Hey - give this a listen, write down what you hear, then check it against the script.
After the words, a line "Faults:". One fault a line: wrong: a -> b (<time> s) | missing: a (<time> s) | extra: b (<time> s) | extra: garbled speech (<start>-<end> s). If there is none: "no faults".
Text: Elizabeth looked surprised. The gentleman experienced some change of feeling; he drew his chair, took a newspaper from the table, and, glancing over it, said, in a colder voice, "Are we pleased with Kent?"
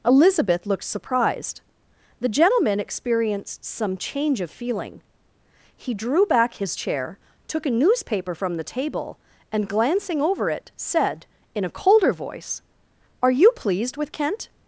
Elizabeth looked surprised. The gentleman experienced some change of feeling; he drew back his chair, took a newspaper from the table, and, glancing over it, said, in a colder voice, "Are you pleased with Kent?"
Faults:
extra: back (6.2 s)
wrong: we -> you (13.3 s)